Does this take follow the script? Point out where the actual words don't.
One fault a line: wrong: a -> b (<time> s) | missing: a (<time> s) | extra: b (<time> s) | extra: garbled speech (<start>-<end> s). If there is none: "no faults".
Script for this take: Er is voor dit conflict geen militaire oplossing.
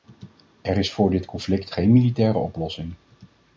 no faults